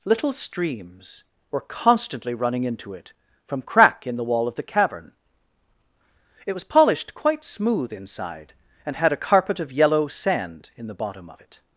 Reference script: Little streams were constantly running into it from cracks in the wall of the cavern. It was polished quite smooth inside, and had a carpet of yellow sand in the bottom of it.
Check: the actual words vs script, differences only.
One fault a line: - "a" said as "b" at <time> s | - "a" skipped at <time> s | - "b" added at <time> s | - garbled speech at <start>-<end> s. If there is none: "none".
- "cracks" said as "crack" at 3.6 s